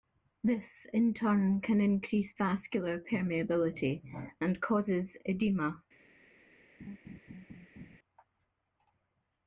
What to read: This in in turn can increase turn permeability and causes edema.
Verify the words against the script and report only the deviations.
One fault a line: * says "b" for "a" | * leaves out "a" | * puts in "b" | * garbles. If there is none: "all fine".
* leaves out "in"
* says "vascular" for "turn"